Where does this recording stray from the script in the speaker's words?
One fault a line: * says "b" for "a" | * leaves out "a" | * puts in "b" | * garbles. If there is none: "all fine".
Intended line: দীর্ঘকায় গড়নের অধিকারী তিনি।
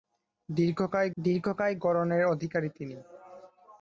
* puts in "দীর্ঘকায়"